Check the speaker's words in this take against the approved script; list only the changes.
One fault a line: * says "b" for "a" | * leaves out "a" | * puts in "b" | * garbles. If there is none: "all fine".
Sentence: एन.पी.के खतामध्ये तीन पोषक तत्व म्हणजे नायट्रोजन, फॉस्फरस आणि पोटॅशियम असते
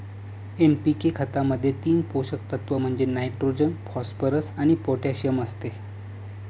all fine